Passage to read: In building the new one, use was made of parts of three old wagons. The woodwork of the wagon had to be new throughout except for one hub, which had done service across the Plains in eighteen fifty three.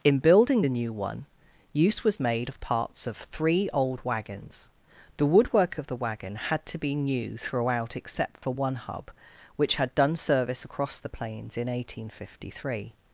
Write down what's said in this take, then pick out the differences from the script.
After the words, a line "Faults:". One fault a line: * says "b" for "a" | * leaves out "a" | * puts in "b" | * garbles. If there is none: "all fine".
In building the new one, use was made of parts of three old wagons. The woodwork of the wagon had to be new throughout except for one hub, which had done service across the Plains in eighteen fifty three.
Faults:
all fine